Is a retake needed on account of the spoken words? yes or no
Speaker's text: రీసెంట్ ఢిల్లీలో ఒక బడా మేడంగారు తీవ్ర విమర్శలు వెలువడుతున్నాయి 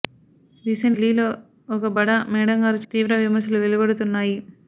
no